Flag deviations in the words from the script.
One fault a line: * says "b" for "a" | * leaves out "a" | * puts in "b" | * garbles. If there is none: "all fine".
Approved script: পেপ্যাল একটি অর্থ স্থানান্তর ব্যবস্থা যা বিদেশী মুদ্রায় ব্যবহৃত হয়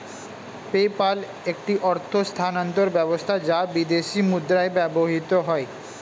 all fine